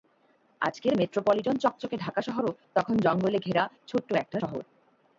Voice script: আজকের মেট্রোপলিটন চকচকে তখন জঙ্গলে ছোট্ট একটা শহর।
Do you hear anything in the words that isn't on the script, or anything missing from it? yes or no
yes